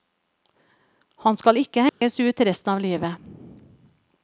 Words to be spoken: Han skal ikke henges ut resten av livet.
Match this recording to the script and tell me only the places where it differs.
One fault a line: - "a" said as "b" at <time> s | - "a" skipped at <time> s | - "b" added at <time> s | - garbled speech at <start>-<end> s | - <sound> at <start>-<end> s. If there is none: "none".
- dropout at 1.9-2.0 s